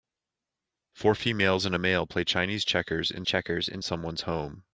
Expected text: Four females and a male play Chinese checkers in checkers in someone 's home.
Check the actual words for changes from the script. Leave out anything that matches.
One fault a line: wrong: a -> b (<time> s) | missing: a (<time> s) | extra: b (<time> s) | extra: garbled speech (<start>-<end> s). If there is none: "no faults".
no faults